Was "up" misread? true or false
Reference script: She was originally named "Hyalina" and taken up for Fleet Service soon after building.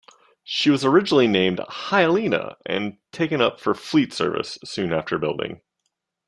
false